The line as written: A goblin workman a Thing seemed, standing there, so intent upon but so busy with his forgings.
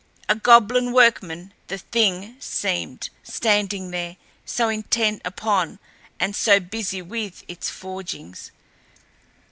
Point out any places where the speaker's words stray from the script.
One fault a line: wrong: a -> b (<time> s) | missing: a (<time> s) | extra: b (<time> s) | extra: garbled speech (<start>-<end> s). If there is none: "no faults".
wrong: a -> the (1.7 s)
wrong: but -> and (6.2 s)
wrong: his -> its (7.5 s)